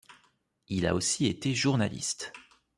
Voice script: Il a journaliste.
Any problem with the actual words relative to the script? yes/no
yes